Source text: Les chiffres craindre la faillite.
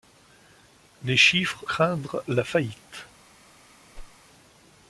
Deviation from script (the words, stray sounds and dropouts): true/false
true